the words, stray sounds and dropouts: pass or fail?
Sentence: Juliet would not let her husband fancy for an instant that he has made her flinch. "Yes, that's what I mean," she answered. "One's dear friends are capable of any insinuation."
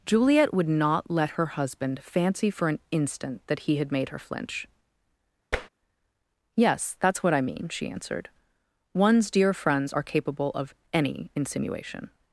fail